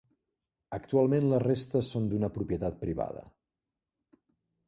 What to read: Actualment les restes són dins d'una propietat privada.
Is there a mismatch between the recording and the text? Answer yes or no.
yes